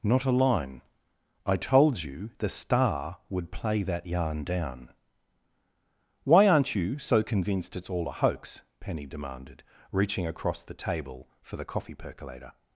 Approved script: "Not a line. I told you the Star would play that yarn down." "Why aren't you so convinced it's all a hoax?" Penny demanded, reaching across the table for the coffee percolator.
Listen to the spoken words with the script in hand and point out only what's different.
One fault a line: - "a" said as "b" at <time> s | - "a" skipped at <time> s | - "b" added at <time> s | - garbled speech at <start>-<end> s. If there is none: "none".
none